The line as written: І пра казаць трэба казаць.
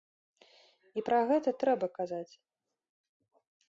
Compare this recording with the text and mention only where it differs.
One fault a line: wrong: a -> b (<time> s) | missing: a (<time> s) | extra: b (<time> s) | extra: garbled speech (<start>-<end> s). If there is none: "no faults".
wrong: казаць -> гэта (1.3 s)